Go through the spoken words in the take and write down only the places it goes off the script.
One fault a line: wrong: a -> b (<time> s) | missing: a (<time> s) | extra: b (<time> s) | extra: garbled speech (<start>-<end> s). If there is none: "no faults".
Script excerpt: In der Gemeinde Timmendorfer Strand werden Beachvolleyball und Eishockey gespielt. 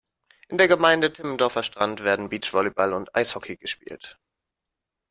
no faults